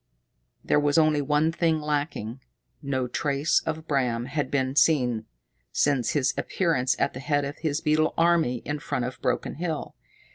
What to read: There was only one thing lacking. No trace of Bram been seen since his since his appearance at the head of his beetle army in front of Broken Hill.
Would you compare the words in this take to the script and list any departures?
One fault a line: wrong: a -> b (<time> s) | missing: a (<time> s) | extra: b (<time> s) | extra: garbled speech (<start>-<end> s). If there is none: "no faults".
extra: had (4.3 s)
missing: since his (6.3 s)